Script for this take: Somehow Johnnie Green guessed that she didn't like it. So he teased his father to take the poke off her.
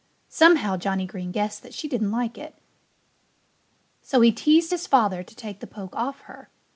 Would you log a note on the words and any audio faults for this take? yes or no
no